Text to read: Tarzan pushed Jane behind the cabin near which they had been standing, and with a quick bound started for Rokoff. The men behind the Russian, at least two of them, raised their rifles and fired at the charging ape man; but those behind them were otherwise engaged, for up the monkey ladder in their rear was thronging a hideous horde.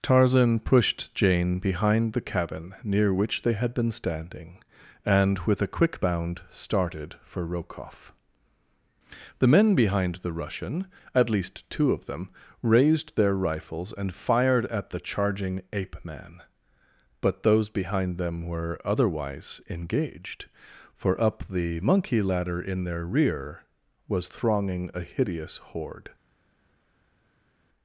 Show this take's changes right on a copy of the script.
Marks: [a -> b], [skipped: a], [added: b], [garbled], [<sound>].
Tarzan pushed Jane behind the cabin near which they had been standing, and with a quick bound started for Rokoff. The men behind the Russian, at least two of them, raised their rifles and fired at the charging ape man; but those behind them were otherwise engaged, for up the monkey ladder in their rear was thronging a hideous horde.